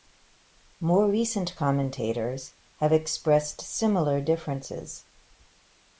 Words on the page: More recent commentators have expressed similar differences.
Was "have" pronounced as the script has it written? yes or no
yes